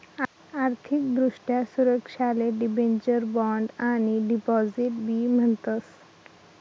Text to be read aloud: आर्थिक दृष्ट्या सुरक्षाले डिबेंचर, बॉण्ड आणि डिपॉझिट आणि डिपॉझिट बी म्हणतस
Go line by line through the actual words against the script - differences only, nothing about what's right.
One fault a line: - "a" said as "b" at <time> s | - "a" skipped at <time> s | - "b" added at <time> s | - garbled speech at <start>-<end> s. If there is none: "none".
- "आणि डिपॉझिट" skipped at 4.9 s